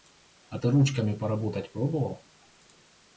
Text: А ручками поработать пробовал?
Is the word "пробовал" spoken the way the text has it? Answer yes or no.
yes